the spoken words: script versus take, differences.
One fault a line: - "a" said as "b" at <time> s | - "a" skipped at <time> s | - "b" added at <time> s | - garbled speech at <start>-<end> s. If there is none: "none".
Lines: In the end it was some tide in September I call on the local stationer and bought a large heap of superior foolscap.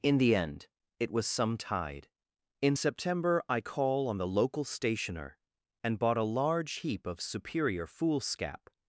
none